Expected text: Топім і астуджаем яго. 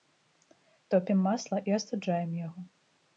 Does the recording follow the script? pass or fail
fail